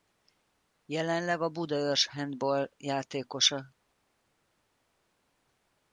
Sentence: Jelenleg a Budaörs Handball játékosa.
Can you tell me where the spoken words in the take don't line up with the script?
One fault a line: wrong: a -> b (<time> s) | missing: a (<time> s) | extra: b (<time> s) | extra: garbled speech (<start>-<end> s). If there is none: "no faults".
no faults